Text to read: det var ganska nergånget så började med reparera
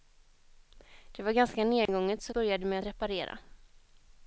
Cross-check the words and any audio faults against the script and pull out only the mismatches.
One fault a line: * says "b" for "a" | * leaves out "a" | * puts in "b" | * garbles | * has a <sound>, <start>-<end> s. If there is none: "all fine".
* has a dropout, 1.9-1.9 s